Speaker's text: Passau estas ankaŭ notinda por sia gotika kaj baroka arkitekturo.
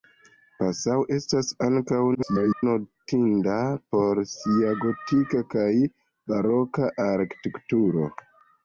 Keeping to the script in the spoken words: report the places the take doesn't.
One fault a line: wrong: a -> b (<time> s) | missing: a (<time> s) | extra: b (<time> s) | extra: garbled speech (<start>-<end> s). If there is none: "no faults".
extra: garbled speech (2.1-2.6 s)